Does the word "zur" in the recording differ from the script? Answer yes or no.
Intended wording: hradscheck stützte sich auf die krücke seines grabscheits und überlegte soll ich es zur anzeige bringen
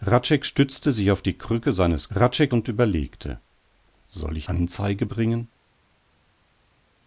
yes